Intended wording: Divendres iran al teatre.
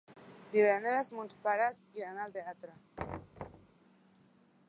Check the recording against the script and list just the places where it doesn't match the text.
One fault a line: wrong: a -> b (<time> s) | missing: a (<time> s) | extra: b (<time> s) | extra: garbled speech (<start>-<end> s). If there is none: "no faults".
extra: mons pares (1.2 s)